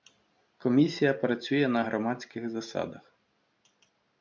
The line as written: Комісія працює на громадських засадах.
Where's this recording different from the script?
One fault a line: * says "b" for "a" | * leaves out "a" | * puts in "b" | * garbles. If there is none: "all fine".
all fine